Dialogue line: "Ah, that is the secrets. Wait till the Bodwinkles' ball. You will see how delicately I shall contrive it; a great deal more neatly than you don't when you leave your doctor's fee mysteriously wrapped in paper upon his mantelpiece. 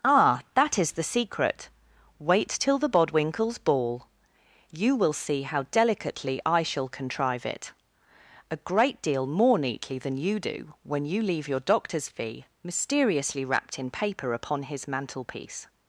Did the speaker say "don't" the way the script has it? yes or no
no